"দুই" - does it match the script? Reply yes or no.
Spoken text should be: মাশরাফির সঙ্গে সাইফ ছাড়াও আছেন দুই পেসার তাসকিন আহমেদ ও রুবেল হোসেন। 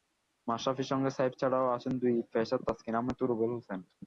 yes